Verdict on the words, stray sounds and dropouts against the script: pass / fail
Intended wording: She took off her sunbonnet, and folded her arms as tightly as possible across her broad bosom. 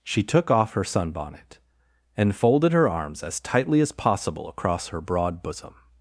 pass